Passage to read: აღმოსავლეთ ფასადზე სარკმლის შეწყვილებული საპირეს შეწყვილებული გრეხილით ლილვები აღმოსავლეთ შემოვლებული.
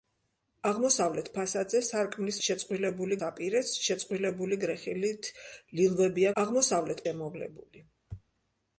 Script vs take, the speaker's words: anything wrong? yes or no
no